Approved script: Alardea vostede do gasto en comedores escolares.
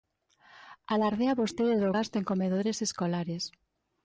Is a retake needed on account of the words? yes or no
no